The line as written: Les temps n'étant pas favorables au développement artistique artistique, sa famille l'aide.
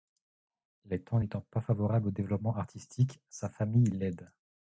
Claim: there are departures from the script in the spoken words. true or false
true